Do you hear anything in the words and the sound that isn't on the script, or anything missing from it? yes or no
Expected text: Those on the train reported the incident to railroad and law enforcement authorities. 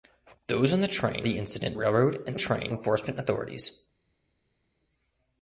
yes